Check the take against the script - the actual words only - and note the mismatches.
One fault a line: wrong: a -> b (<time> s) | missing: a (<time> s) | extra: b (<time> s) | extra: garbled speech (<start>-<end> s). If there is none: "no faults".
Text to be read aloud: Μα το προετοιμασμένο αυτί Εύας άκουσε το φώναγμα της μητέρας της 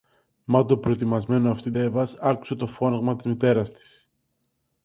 no faults